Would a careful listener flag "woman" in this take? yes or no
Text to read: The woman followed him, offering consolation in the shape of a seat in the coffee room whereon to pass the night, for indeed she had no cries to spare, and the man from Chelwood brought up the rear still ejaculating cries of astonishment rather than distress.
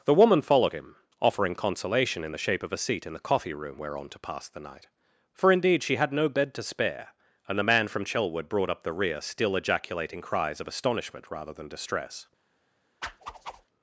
no